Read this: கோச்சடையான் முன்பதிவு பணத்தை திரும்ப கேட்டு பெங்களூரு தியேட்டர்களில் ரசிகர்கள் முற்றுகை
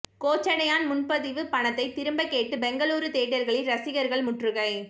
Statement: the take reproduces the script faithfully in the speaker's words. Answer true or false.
true